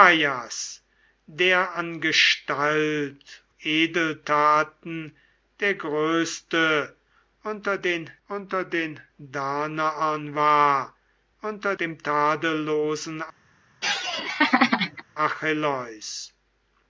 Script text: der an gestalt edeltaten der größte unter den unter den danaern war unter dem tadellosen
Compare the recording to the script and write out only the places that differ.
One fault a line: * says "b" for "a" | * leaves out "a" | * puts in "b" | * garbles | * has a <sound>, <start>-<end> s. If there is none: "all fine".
* has a laugh, 13.8-15.0 s